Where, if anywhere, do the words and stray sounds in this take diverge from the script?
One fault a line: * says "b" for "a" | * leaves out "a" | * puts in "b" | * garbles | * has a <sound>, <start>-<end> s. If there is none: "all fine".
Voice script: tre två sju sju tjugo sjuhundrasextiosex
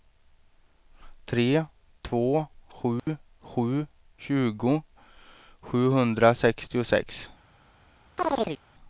* has a dropout, 3.0-3.1 s
* has a chirp, 8.2-8.6 s